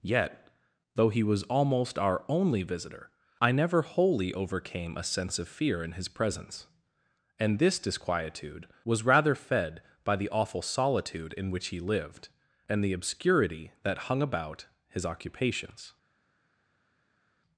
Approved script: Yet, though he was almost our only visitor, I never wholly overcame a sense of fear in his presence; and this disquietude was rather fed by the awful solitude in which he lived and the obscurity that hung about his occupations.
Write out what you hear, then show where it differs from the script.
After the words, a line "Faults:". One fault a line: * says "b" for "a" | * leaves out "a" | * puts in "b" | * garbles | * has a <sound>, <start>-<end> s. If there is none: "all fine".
Yet, though he was almost our only visitor, I never wholly overcame a sense of fear in his presence; and this disquietude was rather fed by the awful solitude in which he lived and the obscurity that hung about his occupations.
Faults:
all fine